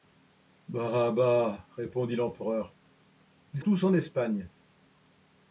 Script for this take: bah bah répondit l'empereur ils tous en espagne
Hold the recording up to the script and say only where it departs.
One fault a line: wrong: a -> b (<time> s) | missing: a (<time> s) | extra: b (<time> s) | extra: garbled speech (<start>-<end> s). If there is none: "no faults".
no faults